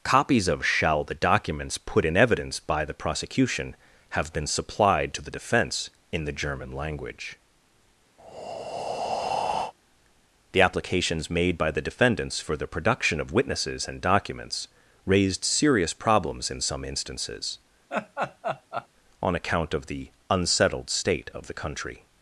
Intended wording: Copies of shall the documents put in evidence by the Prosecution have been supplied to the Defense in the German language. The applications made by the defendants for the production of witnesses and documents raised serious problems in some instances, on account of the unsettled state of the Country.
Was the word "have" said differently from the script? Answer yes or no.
no